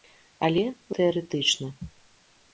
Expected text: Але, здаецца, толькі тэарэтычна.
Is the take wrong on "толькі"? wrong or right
wrong